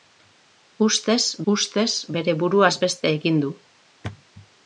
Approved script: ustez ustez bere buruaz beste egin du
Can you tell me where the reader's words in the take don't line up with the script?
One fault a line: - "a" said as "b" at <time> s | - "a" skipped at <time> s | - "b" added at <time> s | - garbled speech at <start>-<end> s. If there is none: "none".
none